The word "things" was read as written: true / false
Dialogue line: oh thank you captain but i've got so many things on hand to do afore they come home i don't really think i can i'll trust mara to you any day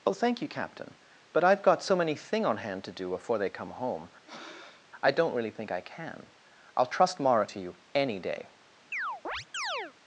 false